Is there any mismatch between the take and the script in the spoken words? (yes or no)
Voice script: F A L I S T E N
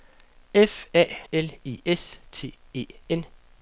no